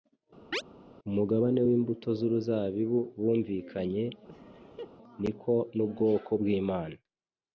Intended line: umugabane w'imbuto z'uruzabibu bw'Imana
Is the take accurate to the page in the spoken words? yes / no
no